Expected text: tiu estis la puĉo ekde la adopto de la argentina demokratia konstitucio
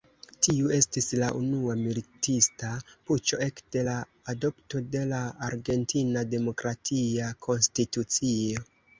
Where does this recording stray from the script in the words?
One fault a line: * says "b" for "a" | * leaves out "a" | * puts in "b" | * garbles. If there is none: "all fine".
* puts in "unua militista"